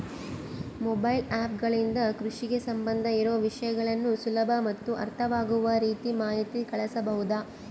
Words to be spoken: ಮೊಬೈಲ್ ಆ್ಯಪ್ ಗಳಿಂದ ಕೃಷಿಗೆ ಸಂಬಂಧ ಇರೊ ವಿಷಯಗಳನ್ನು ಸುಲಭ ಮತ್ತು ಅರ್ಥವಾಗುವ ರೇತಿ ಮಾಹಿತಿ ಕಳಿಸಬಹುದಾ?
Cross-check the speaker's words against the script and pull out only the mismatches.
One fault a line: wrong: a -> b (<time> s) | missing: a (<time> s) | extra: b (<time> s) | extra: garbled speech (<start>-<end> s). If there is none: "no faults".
no faults